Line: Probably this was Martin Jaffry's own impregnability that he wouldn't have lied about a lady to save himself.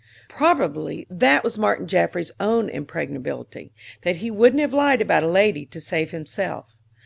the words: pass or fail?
fail